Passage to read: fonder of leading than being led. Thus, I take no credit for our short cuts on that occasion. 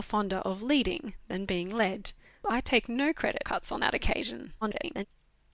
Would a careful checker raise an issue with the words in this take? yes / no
yes